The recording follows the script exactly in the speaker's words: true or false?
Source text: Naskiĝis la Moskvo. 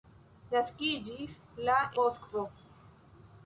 true